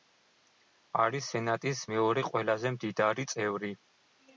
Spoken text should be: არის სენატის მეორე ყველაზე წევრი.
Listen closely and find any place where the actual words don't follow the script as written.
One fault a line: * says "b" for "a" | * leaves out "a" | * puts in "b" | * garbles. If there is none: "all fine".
* puts in "მდიდარი"